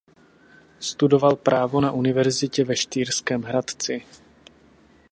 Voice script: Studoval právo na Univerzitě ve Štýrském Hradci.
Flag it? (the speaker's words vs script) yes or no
no